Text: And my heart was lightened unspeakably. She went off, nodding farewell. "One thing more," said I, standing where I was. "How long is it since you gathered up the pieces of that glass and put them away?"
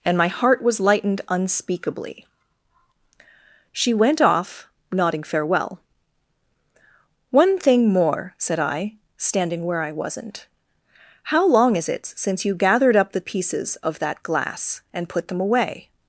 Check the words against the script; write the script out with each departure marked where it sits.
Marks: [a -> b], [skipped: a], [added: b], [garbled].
And my heart was lightened unspeakably. She went off, nodding farewell. "One thing more," said I, standing where I [was. -> wasn't] "How long is it since you gathered up the pieces of that glass and put them away?"